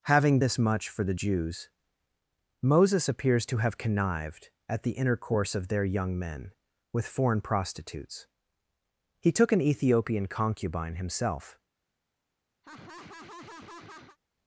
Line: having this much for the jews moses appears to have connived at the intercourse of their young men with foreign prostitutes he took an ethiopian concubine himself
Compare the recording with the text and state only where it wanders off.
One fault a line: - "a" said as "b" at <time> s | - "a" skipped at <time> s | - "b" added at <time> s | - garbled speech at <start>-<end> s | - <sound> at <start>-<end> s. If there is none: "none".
- laugh at 12.6-14.2 s